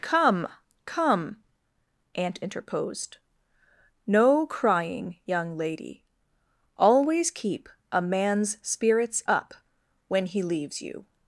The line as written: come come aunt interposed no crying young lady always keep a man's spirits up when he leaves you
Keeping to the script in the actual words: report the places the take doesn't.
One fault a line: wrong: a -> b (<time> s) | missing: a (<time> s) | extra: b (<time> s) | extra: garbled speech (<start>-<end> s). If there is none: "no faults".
no faults